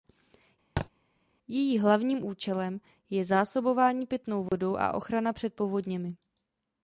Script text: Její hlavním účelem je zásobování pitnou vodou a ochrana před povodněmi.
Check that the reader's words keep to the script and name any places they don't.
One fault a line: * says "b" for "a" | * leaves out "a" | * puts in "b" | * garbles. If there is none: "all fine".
all fine